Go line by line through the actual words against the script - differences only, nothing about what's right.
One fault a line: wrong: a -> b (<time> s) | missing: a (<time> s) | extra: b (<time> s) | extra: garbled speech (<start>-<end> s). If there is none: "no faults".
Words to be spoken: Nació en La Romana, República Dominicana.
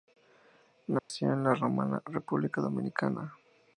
no faults